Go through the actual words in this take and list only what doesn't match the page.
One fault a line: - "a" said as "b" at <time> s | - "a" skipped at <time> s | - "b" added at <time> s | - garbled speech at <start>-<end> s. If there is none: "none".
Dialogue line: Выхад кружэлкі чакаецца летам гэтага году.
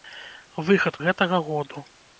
- "кружэлкі чакаецца летам" skipped at 0.9 s